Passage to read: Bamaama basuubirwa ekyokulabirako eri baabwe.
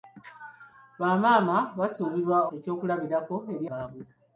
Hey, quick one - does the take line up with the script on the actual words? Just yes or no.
yes